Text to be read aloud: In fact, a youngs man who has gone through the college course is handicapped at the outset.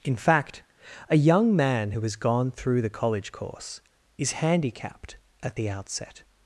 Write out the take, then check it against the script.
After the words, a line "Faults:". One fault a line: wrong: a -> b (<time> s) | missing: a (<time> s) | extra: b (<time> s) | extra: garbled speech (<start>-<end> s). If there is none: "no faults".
In fact, a young man who has gone through the college course is handicapped at the outset.
Faults:
wrong: youngs -> young (1.1 s)